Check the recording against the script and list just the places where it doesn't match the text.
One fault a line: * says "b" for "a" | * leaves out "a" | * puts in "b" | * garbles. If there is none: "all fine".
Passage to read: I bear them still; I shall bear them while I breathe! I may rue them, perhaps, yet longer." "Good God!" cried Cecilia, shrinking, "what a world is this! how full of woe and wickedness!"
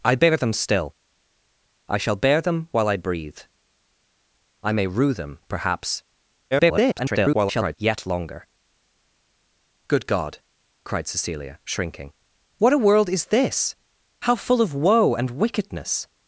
* garbles